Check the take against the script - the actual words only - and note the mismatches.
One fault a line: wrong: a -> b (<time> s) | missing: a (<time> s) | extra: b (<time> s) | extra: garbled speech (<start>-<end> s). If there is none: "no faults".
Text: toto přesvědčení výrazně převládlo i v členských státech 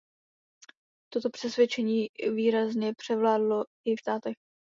missing: členských (4.0 s)